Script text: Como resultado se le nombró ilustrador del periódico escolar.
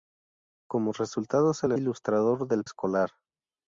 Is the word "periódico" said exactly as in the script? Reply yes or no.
no